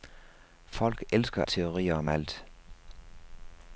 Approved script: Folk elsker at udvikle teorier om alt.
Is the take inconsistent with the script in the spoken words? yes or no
yes